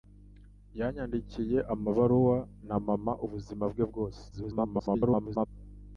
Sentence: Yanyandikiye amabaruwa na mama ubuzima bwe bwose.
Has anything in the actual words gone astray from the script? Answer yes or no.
yes